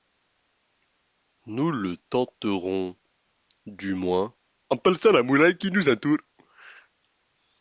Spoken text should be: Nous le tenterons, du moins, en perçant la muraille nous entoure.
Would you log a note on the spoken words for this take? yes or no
yes